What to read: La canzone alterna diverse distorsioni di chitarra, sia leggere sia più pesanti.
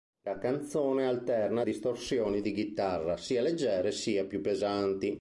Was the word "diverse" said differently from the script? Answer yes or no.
yes